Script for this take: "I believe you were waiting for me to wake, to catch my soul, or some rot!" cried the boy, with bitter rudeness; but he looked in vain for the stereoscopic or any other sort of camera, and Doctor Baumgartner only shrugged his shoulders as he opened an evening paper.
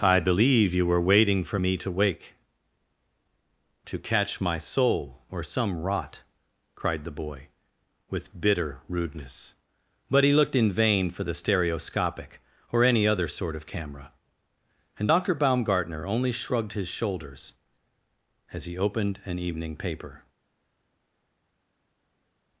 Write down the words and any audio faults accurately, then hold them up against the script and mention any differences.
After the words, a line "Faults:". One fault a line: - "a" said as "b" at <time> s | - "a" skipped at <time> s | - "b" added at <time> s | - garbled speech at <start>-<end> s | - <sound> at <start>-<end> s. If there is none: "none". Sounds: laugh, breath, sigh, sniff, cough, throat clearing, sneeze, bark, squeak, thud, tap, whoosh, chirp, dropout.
"I believe you were waiting for me to wake, to catch my soul, or some rot!" cried the boy, with bitter rudeness; but he looked in vain for the stereoscopic or any other sort of camera, and Doctor Baumgartner only shrugged his shoulders as he opened an evening paper.
Faults:
none